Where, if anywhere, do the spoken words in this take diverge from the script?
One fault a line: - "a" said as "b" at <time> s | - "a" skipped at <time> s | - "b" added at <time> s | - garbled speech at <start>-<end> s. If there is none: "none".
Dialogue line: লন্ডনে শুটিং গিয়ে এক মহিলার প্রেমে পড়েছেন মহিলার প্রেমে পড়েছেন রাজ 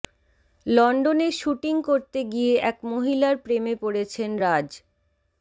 - "করতে" added at 1.9 s
- "মহিলার প্রেমে পড়েছেন" skipped at 4.3 s